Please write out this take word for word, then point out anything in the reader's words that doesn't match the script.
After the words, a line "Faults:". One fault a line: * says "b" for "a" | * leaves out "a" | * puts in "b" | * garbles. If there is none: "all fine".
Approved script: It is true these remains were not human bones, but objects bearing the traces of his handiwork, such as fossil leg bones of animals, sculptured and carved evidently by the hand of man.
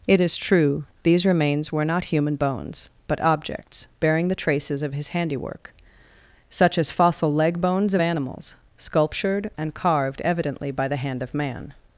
It is true these remains were not human bones, but objects bearing the traces of his handiwork, such as fossil leg bones of animals, sculptured and carved evidently by the hand of man.
Faults:
all fine